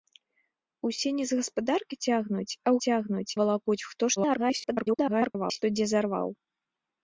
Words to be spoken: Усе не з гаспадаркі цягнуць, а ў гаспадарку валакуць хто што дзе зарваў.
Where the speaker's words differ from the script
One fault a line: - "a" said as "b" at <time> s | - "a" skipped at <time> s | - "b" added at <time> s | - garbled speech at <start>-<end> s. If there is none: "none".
- "гаспадарку" said as "цягнуць" at 2.9 s
- garbled speech at 4.2-5.6 s